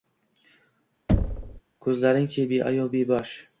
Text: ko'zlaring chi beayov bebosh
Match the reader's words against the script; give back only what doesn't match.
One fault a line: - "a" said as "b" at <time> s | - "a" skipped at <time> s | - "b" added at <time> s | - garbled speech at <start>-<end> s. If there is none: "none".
none